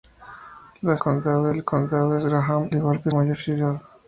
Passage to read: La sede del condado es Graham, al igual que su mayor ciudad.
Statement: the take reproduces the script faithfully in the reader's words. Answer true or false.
false